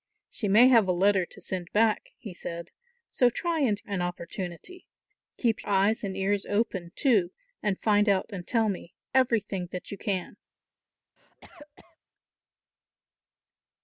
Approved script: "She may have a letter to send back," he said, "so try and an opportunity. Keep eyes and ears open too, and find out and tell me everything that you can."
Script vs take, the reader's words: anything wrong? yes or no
no